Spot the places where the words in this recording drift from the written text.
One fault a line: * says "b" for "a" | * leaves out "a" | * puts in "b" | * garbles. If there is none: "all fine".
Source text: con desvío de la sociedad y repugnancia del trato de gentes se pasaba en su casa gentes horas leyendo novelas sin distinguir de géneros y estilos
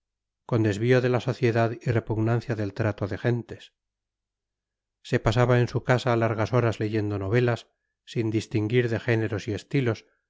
* says "largas" for "gentes"